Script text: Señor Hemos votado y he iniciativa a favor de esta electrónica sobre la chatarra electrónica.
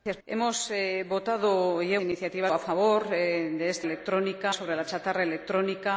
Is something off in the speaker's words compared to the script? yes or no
no